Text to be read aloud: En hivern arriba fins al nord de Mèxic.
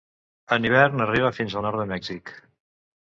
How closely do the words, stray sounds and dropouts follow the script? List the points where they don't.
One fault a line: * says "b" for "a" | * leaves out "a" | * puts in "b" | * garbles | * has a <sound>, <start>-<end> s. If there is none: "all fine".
all fine